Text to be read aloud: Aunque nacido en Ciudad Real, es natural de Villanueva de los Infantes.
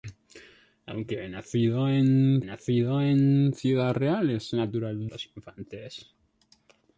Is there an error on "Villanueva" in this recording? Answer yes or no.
yes